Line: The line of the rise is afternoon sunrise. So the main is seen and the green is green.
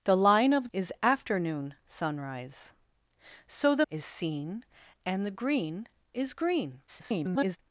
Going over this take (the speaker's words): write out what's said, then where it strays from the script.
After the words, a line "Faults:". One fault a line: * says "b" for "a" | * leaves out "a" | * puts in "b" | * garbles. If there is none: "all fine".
The line of is afternoon sunrise. So the is seen and the green is green. [garbled]
Faults:
* leaves out "the rise"
* leaves out "main"
* garbles